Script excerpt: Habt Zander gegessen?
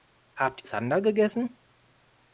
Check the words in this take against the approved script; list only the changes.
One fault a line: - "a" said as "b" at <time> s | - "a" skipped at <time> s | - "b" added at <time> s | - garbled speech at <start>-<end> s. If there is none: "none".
none